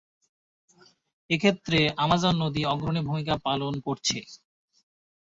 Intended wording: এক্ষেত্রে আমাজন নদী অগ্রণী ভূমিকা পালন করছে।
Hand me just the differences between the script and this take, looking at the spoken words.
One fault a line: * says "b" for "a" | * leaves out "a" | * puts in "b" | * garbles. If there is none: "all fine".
all fine